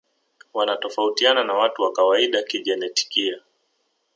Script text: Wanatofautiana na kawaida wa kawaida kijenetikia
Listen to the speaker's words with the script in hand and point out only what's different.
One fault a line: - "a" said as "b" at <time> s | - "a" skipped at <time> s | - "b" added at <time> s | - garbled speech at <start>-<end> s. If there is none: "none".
- "kawaida" said as "watu" at 1.5 s